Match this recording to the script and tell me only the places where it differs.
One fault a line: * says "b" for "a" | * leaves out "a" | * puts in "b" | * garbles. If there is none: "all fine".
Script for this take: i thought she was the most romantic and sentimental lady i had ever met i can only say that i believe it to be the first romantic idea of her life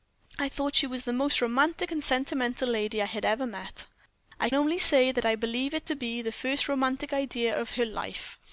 * leaves out "can"